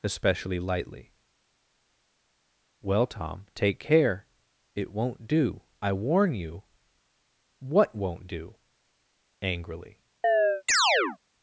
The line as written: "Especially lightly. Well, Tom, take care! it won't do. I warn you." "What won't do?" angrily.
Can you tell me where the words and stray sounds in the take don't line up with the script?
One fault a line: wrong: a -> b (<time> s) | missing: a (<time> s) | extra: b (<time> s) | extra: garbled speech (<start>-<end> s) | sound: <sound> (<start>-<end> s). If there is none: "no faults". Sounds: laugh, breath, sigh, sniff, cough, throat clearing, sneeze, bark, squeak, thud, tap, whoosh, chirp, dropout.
sound: chirp (10.2-11.2 s)